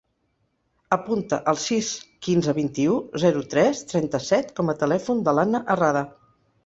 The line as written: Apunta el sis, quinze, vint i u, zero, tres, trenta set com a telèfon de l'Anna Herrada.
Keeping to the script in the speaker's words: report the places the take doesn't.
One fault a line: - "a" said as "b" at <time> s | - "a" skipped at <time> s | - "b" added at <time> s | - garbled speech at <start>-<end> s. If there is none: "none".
none